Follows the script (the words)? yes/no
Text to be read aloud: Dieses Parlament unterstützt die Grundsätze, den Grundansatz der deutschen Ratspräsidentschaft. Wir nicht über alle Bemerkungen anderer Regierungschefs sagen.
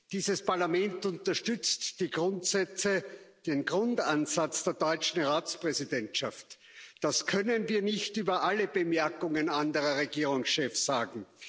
no